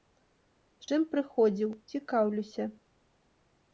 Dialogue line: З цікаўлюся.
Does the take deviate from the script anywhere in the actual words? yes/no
yes